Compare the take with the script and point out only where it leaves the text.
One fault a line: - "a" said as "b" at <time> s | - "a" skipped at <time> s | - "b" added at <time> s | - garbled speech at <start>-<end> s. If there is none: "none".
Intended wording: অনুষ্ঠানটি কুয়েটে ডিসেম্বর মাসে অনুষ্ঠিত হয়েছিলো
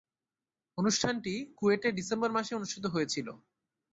none